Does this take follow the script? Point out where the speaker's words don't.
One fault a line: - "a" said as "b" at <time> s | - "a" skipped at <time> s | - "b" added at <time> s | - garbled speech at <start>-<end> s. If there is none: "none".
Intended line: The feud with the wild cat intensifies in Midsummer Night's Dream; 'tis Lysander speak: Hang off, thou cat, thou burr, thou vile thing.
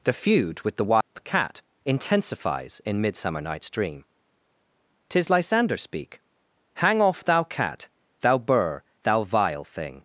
none